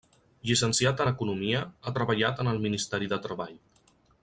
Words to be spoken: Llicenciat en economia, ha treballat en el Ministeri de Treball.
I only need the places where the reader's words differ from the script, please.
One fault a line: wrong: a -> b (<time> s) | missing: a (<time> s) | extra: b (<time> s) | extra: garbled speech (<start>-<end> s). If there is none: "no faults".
no faults